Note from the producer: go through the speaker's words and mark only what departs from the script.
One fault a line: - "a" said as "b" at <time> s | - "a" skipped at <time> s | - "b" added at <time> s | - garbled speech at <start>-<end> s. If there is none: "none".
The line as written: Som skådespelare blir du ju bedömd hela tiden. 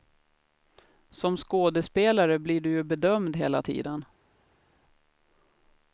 none